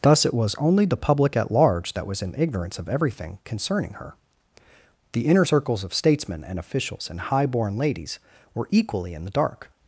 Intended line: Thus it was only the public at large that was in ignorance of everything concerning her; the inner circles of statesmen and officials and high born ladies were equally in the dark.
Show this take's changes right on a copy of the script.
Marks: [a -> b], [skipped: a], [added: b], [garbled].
Thus it was only the public at large that was in ignorance of everything concerning her; the inner circles of statesmen and officials and high born ladies were equally in the dark.